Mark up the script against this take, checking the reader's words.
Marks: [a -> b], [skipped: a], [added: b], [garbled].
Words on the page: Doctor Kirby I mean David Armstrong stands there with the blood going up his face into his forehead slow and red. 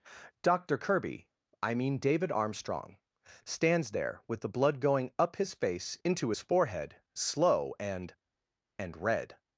Doctor Kirby I mean David Armstrong stands there with the blood going up his face into his forehead slow and [added: and] red.